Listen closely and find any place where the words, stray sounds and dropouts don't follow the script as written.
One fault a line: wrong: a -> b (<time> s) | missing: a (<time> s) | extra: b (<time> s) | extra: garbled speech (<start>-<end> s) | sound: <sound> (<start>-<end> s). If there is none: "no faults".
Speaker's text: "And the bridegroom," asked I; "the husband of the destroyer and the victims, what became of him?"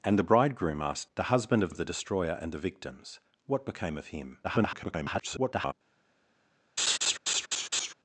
missing: I (1.1 s)
extra: of (1.7 s)
extra: garbled speech (4.4-5.7 s)
sound: laugh (6.8-7.9 s)